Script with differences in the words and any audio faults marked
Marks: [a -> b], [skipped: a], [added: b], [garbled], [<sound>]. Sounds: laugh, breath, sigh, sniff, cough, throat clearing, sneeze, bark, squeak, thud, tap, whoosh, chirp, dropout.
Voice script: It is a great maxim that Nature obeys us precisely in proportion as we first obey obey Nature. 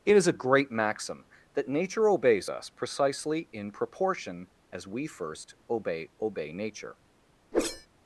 It is a great maxim that Nature obeys us precisely in proportion as we first obey obey Nature. [whoosh]